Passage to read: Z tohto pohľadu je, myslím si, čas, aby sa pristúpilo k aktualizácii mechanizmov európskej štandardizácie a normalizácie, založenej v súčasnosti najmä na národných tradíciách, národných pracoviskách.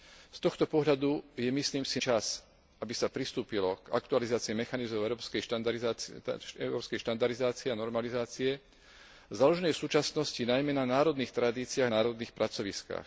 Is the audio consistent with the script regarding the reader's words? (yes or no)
yes